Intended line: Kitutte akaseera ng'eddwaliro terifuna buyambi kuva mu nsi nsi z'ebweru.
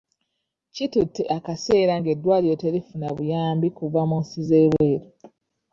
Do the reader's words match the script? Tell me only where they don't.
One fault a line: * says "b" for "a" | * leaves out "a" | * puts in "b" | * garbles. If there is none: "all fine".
* leaves out "nsi"